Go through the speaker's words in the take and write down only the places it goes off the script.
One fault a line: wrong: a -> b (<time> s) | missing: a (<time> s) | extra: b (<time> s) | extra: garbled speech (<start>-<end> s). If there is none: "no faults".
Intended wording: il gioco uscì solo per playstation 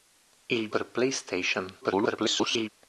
missing: gioco uscì solo (0.7 s)
extra: garbled speech (1.8-2.7 s)